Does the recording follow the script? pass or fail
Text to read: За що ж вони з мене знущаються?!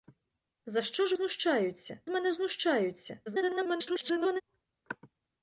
fail